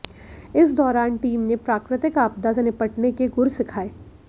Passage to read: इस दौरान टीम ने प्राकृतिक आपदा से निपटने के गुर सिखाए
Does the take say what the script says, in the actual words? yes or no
yes